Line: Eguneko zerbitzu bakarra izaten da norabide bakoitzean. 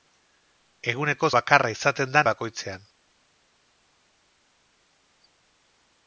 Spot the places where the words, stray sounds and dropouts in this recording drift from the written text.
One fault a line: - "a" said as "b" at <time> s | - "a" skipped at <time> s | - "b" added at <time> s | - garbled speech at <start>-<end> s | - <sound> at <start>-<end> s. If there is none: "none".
- "zerbitzu" skipped at 1.3 s
- "norabide" skipped at 2.2 s